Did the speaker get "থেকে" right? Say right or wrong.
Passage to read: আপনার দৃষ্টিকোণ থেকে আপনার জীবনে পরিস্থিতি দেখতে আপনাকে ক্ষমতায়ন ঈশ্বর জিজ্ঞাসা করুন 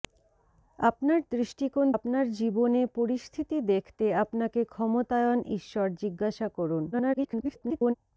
wrong